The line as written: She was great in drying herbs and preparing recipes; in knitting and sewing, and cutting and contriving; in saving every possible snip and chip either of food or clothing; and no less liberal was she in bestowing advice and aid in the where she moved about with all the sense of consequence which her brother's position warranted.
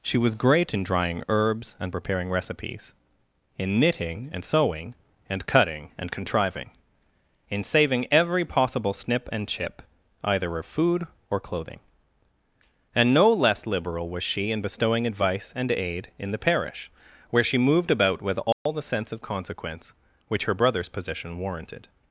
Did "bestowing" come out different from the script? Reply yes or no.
no